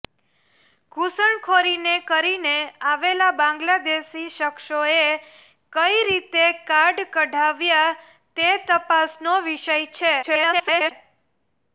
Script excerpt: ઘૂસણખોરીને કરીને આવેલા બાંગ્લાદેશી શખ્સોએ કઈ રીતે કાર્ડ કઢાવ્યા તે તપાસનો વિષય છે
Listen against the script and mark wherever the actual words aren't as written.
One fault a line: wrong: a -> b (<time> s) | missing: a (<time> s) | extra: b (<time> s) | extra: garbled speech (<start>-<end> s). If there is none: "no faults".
extra: garbled speech (10.2-10.9 s)